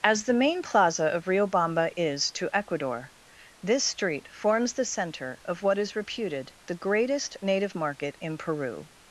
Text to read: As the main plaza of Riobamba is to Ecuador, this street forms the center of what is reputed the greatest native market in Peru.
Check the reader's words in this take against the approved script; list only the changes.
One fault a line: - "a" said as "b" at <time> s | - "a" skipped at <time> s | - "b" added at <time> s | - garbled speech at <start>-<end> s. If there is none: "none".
none